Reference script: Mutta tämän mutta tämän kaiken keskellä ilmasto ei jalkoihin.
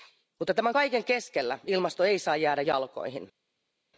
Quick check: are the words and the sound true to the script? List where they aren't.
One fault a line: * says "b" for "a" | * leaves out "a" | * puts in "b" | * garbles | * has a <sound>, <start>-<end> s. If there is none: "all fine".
* leaves out "mutta tämän"
* puts in "saa jäädä"